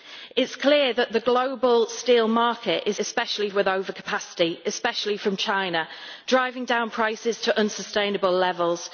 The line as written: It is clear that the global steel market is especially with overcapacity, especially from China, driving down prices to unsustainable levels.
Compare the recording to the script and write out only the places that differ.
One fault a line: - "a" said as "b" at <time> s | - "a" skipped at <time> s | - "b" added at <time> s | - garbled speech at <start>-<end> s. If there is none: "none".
none